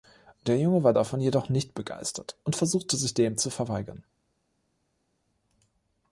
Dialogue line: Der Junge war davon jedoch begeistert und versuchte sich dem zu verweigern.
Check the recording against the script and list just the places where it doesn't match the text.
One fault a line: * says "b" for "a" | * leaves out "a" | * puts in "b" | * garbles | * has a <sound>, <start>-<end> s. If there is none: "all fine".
* puts in "nicht"